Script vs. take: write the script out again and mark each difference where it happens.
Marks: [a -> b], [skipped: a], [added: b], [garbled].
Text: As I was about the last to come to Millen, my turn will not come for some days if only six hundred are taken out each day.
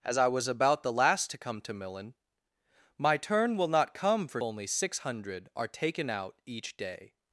As I was about the last to come to Millen, my turn will not come for [skipped: some days if] only six hundred are taken out each day.